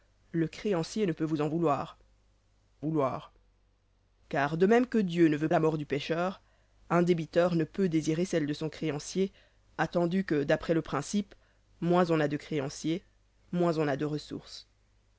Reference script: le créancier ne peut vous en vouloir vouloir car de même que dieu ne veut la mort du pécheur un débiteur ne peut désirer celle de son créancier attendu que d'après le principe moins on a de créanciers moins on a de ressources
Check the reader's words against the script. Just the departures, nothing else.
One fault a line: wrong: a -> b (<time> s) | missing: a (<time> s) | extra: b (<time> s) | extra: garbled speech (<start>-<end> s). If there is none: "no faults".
no faults